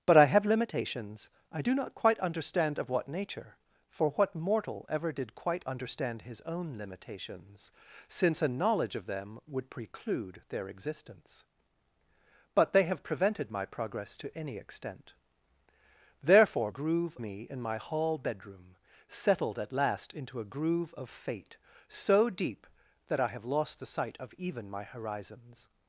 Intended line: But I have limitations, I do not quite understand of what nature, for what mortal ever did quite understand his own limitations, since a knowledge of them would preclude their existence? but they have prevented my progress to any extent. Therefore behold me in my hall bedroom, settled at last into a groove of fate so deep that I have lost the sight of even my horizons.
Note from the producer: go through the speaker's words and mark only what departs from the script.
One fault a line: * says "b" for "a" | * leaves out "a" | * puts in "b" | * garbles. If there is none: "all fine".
* says "groove" for "behold"